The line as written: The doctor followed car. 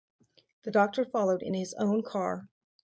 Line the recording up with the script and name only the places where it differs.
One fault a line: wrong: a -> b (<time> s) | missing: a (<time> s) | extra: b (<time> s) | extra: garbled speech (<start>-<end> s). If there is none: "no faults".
extra: in his own (1.4 s)